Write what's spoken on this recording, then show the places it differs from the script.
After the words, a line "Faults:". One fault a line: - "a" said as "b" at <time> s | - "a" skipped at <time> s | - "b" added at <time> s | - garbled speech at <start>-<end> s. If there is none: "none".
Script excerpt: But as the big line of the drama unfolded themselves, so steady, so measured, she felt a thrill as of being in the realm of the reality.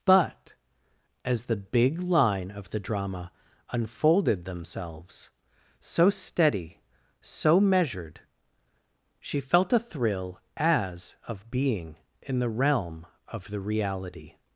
But as the big line of the drama unfolded themselves, so steady, so measured, she felt a thrill as of being in the realm of the reality.
Faults:
none